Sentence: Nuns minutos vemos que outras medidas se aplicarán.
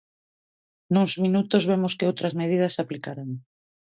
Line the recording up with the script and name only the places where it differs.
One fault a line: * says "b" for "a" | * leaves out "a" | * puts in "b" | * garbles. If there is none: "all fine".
all fine